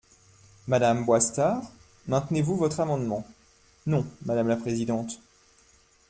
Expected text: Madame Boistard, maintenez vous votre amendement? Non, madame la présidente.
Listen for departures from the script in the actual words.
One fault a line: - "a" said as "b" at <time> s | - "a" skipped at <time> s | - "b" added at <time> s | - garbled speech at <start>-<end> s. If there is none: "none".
none